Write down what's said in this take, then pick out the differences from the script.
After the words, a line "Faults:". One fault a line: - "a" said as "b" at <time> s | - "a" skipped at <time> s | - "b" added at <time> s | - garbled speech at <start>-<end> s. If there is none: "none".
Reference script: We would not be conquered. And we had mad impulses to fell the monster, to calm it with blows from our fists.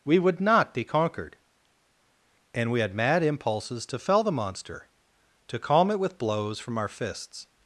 We would not be conquered. And we had mad impulses to fell the monster, to calm it with blows from our fists.
Faults:
none